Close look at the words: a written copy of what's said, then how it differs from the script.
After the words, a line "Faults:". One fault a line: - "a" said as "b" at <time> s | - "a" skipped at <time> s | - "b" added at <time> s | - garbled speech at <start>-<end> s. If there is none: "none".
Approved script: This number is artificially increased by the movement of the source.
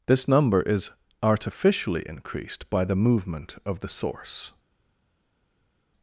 This number is artificially increased by the movement of the source.
Faults:
none